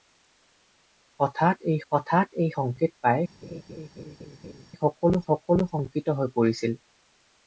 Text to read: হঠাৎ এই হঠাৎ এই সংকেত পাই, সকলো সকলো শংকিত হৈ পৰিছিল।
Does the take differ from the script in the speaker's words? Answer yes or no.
no